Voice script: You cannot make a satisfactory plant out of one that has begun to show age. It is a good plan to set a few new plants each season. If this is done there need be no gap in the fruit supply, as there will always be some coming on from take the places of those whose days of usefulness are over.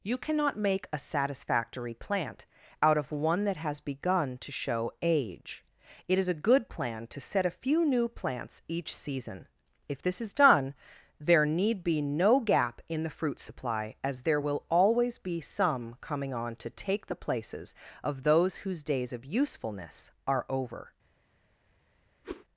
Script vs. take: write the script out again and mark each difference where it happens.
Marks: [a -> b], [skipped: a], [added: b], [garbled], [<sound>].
You cannot make a satisfactory plant out of one that has begun to show age. It is a good plan to set a few new plants each season. If this is done there need be no gap in the fruit supply, as there will always be some coming on [from -> to] take the places of those whose days of usefulness are over. [whoosh]